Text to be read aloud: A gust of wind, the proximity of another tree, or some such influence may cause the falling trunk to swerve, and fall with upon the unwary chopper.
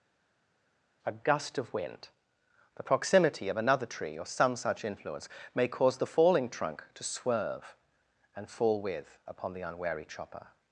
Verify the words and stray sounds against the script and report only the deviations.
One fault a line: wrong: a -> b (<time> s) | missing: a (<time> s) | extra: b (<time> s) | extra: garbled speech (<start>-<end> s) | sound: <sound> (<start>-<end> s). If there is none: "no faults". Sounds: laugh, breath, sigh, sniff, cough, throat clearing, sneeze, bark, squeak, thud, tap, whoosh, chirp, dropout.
no faults